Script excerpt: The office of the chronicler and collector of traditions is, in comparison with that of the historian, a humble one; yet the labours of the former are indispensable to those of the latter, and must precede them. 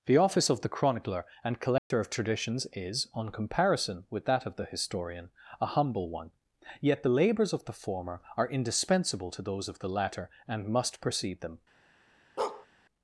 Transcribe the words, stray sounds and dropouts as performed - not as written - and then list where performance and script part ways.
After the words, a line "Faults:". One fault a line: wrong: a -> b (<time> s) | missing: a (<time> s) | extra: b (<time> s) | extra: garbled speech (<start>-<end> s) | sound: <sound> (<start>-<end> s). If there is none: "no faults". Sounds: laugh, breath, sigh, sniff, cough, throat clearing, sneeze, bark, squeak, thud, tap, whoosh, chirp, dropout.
The office of the chronicler and collector of traditions is, on comparison with that of the historian, a humble one; yet the labours of the former are indispensable to those of the latter, and must precede them.
Faults:
sound: dropout (1.8-1.9 s)
wrong: in -> on (3.1 s)
sound: bark (12.4-12.7 s)